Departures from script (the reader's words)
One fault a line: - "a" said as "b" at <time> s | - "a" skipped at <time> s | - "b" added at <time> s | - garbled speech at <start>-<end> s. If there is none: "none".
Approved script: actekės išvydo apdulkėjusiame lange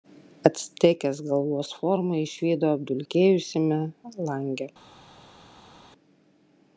- "galvos formą" added at 1.3 s